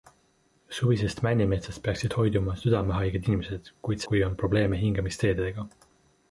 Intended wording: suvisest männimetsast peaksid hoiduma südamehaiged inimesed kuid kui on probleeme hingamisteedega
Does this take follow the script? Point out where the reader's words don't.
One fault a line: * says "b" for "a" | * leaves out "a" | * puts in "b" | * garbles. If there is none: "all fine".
all fine